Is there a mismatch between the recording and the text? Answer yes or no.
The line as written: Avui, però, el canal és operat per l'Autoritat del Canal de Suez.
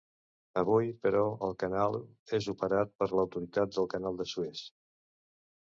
no